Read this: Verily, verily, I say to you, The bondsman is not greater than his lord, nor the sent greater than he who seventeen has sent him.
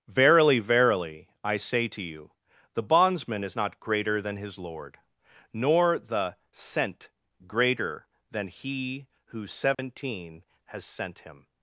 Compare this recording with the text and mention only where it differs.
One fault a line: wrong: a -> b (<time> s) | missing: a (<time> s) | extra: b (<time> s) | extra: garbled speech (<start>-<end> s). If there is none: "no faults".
no faults